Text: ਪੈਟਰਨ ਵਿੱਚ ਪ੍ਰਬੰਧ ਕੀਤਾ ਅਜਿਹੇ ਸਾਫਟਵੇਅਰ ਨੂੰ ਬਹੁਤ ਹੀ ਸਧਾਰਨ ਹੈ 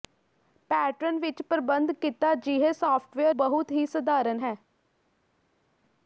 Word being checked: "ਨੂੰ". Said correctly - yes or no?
no